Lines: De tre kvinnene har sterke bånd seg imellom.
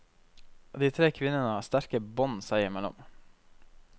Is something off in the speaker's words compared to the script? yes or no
no